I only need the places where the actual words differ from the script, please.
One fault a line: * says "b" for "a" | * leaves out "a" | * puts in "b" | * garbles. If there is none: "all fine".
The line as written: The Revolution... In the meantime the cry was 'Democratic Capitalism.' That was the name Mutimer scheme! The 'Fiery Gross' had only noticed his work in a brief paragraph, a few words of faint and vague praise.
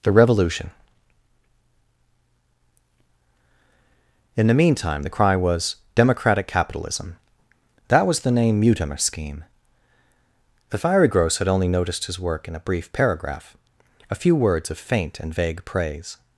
all fine